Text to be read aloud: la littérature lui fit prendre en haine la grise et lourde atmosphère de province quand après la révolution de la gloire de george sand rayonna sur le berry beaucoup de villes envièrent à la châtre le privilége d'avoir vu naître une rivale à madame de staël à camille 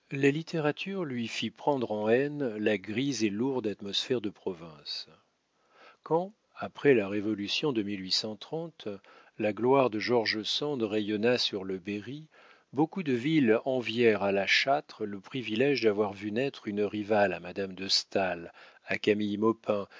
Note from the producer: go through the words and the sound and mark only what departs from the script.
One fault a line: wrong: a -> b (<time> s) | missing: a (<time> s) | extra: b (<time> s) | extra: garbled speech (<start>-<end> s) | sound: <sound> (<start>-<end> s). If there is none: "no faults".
no faults